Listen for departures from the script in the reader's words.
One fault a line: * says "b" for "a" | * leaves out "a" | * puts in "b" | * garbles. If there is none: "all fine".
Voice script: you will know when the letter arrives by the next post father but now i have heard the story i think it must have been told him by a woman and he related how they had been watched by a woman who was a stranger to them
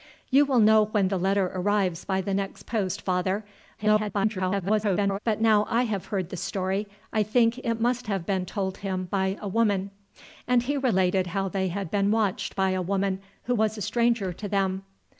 * garbles